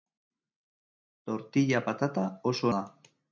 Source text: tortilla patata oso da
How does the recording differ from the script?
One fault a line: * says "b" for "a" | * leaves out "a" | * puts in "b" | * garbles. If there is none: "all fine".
all fine